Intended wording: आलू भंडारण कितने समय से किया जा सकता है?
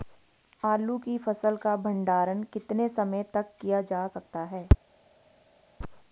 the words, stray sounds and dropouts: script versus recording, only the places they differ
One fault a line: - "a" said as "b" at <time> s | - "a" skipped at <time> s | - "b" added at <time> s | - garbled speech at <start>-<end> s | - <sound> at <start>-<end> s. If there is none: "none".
- "की फसल का" added at 1.0 s
- "से" said as "तक" at 3.3 s